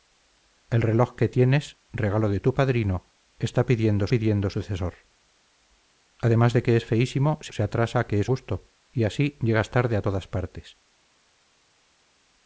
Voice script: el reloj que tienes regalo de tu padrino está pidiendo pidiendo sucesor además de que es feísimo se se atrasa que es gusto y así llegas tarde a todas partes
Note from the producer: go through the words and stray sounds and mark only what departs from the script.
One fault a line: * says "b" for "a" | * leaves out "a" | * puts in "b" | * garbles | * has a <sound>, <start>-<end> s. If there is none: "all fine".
all fine